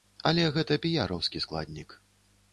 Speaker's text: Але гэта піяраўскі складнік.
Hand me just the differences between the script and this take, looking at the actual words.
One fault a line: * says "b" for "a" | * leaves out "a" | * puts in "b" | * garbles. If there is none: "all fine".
all fine